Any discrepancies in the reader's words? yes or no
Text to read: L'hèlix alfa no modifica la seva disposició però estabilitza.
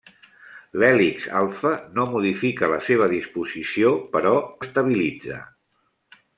no